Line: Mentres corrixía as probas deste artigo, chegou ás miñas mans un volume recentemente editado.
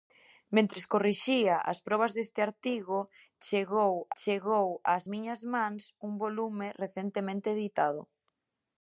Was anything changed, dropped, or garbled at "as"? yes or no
no